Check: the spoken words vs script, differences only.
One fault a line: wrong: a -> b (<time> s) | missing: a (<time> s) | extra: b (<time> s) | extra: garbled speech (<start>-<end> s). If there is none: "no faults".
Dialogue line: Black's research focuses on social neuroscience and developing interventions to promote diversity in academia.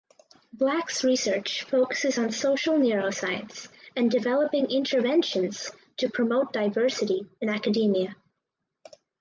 no faults